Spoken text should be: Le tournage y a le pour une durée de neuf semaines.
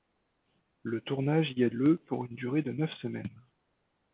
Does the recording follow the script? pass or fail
pass